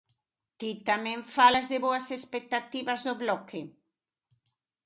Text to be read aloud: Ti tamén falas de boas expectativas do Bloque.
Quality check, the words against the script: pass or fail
pass